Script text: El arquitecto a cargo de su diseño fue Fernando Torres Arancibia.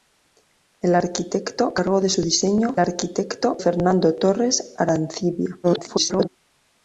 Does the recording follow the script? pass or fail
fail